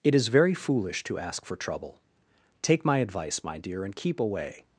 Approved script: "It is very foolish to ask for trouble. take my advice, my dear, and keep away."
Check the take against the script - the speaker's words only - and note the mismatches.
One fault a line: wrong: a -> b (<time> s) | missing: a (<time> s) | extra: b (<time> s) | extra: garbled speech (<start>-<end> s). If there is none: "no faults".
no faults